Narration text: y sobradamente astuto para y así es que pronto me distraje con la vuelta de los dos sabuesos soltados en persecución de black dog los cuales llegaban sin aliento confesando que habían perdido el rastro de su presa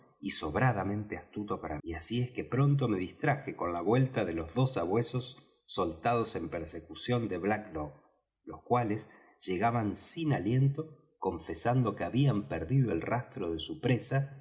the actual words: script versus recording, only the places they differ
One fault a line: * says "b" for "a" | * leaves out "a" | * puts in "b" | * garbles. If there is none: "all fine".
all fine